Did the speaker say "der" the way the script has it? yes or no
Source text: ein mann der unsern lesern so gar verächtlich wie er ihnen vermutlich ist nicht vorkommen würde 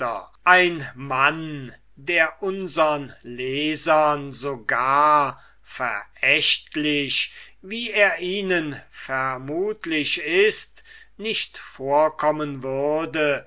yes